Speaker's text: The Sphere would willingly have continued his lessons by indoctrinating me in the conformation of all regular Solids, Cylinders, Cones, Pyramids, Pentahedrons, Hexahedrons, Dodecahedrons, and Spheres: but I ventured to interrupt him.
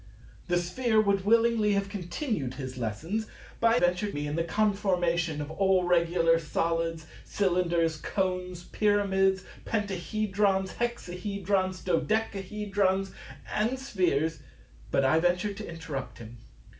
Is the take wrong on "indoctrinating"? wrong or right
wrong